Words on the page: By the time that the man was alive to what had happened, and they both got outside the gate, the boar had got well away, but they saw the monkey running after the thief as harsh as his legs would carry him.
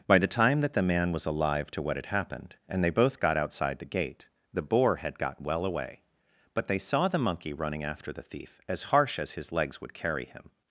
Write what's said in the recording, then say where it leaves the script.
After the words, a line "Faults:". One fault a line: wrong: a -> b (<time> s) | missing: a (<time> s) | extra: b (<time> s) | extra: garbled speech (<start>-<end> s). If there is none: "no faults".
By the time that the man was alive to what had happened, and they both got outside the gate, the boar had got well away, but they saw the monkey running after the thief as harsh as his legs would carry him.
Faults:
no faults